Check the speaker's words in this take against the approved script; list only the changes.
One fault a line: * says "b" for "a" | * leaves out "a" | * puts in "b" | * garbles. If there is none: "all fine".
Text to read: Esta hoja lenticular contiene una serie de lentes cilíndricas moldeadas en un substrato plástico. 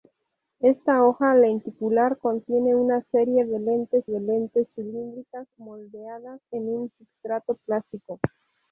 * puts in "de lentes"